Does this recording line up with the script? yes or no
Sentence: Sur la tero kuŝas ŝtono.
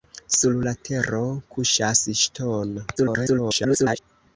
no